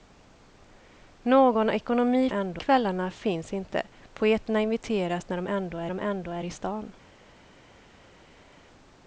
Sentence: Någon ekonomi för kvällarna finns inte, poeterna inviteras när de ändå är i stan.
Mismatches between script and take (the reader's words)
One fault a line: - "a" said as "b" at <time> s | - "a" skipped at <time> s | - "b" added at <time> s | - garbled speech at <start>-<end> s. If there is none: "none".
- "för" said as "ändå" at 2.3 s
- "de ändå är" added at 5.9 s